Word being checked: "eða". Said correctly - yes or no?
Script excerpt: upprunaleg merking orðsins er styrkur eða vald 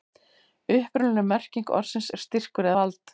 no